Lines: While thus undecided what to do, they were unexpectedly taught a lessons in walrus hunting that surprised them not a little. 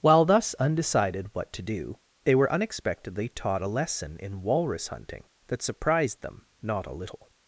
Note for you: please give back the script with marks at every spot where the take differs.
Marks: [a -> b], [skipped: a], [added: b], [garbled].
While thus undecided what to do, they were unexpectedly taught a [lessons -> lesson] in walrus hunting that surprised them not a little.